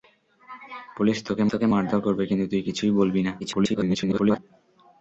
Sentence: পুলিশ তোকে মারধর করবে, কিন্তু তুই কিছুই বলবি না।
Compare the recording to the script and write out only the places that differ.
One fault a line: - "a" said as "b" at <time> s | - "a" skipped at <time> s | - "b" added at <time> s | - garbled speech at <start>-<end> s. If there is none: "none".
- "তোকে" added at 1.5 s
- garbled speech at 3.4-4.4 s